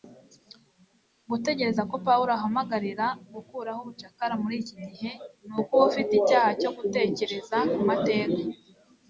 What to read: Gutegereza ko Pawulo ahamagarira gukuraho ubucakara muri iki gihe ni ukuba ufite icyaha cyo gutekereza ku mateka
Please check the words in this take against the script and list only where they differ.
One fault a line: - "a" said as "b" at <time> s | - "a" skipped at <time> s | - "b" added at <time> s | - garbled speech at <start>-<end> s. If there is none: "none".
none